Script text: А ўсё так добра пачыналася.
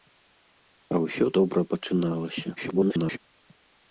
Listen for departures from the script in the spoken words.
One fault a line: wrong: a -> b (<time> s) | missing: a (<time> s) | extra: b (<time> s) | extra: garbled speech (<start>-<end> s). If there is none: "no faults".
missing: так (1.2 s)
extra: garbled speech (2.6-3.2 s)